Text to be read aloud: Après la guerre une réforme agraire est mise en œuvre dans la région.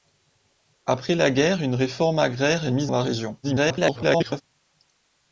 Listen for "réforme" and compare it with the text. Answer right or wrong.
right